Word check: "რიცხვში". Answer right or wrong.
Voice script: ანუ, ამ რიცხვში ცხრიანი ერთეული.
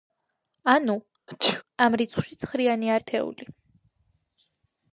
right